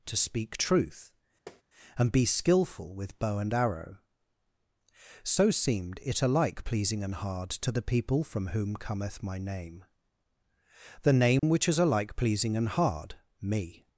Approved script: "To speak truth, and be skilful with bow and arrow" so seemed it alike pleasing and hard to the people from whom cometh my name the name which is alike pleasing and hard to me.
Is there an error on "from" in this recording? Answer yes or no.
no